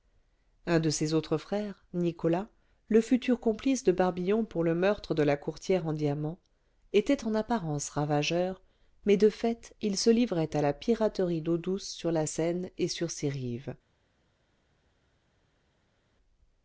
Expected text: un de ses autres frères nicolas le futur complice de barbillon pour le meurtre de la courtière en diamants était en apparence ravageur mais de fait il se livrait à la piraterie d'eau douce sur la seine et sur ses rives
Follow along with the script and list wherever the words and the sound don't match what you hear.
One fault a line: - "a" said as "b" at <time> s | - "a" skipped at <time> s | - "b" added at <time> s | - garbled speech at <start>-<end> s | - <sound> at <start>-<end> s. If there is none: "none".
none